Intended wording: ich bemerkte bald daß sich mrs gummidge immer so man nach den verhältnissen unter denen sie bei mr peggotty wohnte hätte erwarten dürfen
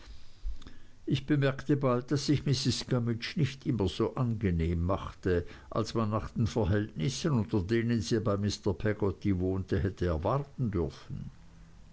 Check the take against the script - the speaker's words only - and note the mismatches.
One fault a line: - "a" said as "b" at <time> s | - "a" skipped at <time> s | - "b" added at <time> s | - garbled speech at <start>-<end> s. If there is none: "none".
- "nicht" added at 3.4 s
- "angenehm machte als" added at 4.2 s